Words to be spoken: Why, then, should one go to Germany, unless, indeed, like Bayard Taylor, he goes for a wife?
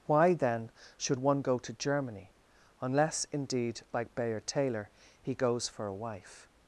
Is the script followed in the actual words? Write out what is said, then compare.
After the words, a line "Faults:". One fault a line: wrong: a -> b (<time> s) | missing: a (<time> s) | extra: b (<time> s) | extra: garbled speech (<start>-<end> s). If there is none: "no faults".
Why, then, should one go to Germany, unless, indeed, like Bayard Taylor, he goes for a wife?
Faults:
no faults